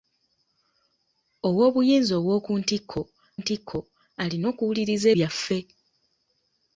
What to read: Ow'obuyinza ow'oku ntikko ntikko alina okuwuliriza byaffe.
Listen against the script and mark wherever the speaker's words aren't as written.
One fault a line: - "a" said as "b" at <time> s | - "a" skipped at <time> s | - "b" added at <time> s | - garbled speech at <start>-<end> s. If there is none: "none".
none